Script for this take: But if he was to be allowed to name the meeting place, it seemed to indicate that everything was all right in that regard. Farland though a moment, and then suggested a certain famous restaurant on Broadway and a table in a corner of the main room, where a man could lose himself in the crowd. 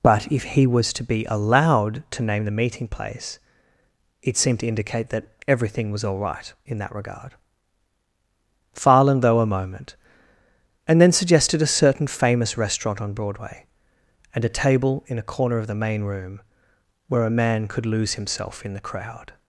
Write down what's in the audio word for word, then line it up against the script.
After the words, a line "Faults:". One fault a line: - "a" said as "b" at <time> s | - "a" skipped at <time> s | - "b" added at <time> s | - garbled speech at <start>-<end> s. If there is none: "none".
But if he was to be allowed to name the meeting place, it seemed to indicate that everything was all right in that regard. Farland though a moment, and then suggested a certain famous restaurant on Broadway and a table in a corner of the main room, where a man could lose himself in the crowd.
Faults:
none